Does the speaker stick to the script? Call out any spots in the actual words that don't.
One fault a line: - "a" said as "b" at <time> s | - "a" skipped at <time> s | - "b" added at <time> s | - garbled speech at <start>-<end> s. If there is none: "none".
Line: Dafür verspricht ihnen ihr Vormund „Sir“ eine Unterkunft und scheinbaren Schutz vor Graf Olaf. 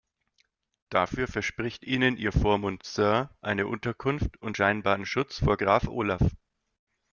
none